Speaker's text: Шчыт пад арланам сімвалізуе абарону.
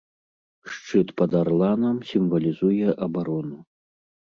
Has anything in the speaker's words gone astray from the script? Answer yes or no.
no